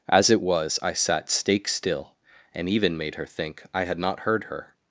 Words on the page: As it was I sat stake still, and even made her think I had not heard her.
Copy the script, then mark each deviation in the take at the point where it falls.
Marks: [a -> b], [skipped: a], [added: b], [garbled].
As it was I sat stake still, and even made her think I had not heard her.